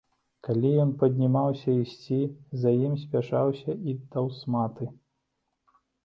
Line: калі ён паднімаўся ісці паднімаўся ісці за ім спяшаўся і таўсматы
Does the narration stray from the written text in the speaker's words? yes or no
yes